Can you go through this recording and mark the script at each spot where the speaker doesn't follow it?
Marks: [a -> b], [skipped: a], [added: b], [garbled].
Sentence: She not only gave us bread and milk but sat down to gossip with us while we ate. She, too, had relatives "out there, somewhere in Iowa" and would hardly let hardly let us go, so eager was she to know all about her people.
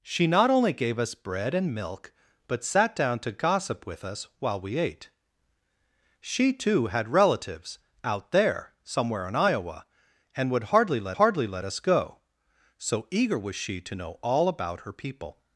She not only gave us bread and milk but sat down to gossip with us while we ate. She, too, had relatives "out there, somewhere in Iowa" and would hardly let hardly let us go, so eager was she to know all about her people.